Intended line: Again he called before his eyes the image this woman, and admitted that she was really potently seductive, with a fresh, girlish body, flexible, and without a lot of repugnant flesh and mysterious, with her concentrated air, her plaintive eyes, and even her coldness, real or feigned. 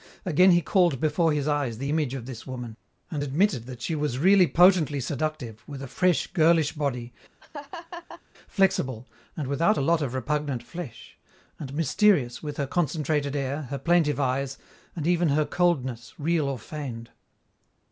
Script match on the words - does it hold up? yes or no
no